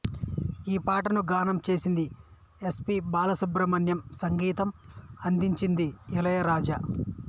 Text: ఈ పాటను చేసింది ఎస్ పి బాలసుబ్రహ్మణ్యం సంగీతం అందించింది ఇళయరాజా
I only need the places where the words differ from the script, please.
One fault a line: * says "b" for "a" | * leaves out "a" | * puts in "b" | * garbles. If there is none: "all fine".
* puts in "గానం"